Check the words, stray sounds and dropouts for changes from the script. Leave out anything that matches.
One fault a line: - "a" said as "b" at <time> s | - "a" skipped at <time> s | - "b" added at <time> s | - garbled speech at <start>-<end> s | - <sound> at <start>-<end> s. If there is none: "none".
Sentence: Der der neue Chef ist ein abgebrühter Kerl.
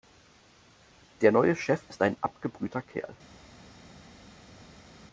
- "der" skipped at 1.3 s